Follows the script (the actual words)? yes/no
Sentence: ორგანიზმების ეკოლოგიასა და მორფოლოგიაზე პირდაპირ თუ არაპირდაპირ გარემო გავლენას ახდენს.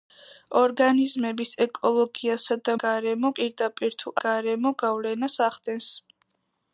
no